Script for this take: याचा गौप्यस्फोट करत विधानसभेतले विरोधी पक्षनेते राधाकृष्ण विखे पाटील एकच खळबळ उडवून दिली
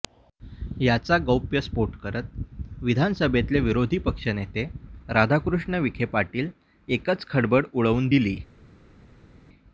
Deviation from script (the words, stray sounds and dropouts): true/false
false